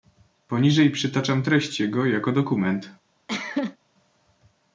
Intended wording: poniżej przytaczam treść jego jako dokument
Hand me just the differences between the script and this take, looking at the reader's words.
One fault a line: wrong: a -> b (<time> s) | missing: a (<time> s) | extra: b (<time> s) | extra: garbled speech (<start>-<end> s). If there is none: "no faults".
no faults